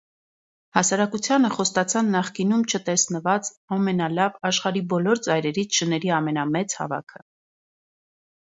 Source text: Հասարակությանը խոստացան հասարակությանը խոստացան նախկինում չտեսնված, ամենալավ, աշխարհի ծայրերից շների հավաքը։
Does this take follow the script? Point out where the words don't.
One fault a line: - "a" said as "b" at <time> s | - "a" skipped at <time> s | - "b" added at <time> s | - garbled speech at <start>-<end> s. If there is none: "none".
- "հասարակությանը խոստացան" skipped at 2.1 s
- "բոլոր" added at 5.0 s
- "ամենամեծ" added at 6.2 s